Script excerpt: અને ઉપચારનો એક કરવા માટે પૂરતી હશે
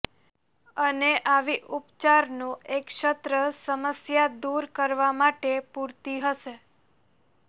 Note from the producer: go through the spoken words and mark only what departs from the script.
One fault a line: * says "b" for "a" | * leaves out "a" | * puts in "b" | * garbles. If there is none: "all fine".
* puts in "આવી"
* puts in "સત્ર સમસ્યા દૂર"